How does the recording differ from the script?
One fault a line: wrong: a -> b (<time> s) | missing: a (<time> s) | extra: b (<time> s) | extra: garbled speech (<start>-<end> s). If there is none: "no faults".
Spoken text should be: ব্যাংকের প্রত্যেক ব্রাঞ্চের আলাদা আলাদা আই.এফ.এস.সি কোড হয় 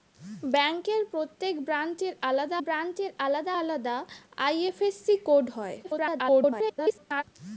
extra: ব্রাঞ্চের আলাদা (2.6 s)
extra: garbled speech (5.8-7.2 s)